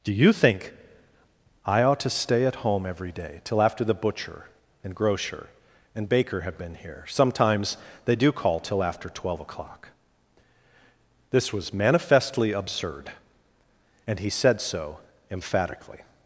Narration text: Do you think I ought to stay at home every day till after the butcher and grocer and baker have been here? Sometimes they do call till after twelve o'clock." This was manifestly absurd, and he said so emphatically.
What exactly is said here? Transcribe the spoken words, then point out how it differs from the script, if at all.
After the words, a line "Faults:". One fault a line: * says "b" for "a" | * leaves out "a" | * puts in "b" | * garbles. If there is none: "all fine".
Do you think I ought to stay at home every day till after the butcher and grocer and baker have been here? Sometimes they do call till after twelve o'clock." This was manifestly absurd, and he said so emphatically.
Faults:
all fine